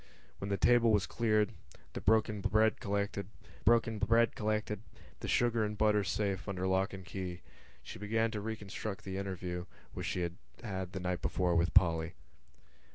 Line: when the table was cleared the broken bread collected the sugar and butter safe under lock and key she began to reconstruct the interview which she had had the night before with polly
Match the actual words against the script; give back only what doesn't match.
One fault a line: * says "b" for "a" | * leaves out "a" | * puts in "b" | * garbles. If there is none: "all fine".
* puts in "broken bread collected"